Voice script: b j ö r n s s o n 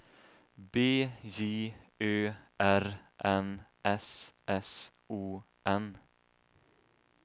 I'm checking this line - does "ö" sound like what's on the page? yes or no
yes